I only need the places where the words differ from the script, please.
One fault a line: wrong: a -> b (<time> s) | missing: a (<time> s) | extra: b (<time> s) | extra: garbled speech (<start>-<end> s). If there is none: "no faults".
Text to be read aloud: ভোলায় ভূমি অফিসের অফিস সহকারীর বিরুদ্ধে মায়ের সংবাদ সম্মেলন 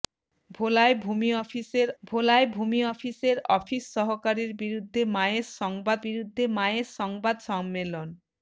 extra: ভোলায় ভূমি অফিসের (2.0 s)
extra: বিরুদ্ধে মায়ের সংবাদ (6.0 s)